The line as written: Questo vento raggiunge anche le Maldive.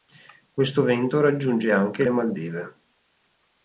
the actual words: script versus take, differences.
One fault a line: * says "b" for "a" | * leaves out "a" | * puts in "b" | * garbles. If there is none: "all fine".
all fine